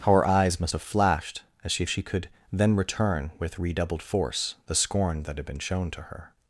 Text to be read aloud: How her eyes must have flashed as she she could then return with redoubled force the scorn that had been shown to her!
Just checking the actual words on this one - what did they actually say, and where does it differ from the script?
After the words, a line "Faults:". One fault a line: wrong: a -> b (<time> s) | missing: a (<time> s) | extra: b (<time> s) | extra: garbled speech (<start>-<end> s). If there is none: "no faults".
How her eyes must have flashed as she she could then return with redoubled force the scorn that had been shown to her!
Faults:
no faults